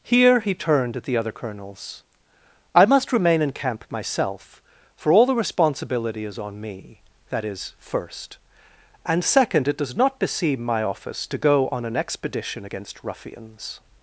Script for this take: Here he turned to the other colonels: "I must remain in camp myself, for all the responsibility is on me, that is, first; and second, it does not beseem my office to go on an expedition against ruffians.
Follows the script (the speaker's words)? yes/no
no